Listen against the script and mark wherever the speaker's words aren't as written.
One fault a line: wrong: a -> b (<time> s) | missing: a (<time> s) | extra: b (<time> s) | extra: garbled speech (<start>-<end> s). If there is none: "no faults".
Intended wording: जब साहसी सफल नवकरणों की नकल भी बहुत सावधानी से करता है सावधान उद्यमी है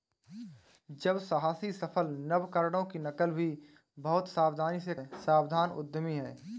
missing: करता (5.0 s)